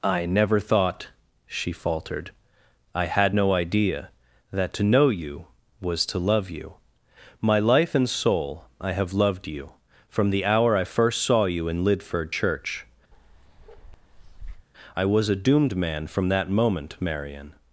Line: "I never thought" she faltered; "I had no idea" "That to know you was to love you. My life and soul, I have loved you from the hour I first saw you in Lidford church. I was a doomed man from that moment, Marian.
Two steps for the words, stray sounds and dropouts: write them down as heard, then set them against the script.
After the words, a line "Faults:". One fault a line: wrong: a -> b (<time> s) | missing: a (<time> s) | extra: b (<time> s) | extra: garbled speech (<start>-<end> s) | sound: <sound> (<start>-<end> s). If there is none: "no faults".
"I never thought" she faltered; "I had no idea" "That to know you was to love you. My life and soul, I have loved you from the hour I first saw you in Lidford church. I was a doomed man from that moment, Marian.
Faults:
sound: bark (13.1-14.7 s)